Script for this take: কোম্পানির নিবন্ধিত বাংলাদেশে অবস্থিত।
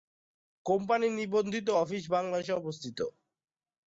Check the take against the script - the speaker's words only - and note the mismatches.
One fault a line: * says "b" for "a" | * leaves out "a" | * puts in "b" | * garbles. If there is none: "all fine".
* puts in "অফিস"